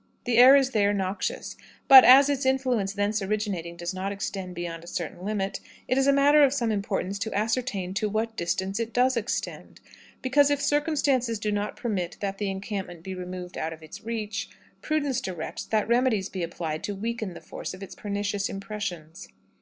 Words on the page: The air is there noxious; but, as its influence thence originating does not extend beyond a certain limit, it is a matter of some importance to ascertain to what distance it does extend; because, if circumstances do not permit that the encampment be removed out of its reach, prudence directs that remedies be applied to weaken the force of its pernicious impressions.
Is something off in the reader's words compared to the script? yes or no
no